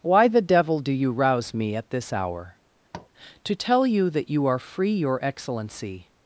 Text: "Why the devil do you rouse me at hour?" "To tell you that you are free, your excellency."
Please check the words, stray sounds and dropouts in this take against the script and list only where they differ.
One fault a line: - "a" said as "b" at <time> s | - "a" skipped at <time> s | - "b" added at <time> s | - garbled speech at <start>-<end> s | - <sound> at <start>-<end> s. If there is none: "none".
- "this" added at 1.9 s
- tap at 2.9-3.1 s